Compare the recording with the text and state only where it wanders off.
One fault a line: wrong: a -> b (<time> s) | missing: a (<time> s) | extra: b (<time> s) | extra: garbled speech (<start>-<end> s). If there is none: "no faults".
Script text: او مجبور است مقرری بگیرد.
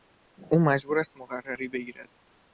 no faults